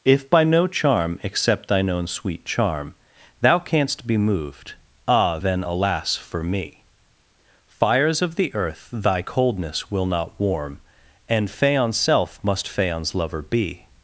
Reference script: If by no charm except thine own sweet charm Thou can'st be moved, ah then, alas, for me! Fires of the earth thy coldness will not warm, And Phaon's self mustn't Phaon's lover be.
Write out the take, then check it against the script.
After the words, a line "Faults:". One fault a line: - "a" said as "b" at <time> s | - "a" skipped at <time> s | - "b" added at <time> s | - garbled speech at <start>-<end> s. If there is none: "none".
If by no charm except thine own sweet charm Thou can'st be moved, ah then, alas, for me! Fires of the earth thy coldness will not warm, And Phaon's self must Phaon's lover be.
Faults:
- "mustn't" said as "must" at 12.4 s